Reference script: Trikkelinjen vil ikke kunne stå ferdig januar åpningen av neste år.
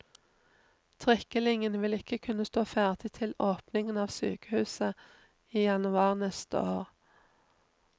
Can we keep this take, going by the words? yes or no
no